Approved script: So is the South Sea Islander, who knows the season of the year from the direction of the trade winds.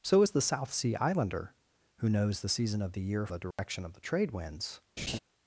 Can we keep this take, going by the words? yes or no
no